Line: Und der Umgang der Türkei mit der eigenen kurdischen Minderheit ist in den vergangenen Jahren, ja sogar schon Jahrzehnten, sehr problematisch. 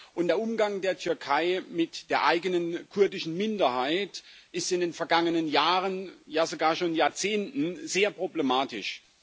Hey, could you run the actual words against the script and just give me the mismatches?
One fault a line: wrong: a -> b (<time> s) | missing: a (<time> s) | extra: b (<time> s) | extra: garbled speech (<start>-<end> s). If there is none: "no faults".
no faults